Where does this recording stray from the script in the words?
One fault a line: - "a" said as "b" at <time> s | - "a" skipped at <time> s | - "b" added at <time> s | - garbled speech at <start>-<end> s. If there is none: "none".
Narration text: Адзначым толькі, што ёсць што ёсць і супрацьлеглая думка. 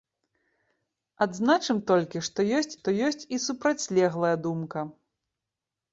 none